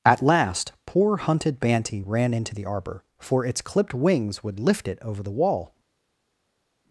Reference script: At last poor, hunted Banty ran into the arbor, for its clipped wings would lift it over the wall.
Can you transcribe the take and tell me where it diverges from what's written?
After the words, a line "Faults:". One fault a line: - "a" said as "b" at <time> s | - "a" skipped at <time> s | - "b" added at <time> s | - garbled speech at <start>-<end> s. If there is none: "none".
At last poor, hunted Banty ran into the arbor, for its clipped wings would lift it over the wall.
Faults:
none